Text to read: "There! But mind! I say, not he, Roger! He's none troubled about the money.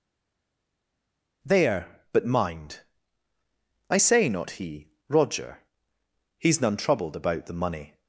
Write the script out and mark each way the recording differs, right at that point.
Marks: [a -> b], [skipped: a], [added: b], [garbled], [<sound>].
"There! But mind! I say, not he, Roger! He's none troubled about the money.